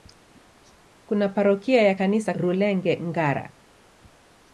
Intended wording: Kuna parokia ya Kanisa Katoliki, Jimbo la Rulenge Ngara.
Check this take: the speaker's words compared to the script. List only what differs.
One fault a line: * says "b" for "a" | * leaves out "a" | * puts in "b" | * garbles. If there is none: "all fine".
* leaves out "Katoliki Jimbo la"